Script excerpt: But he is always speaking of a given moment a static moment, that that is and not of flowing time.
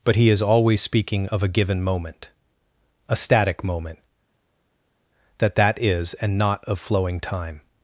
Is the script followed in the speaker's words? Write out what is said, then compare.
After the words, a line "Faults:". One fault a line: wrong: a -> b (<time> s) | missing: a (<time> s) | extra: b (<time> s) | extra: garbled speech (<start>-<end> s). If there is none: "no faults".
But he is always speaking of a given moment a static moment, that that is and not of flowing time.
Faults:
no faults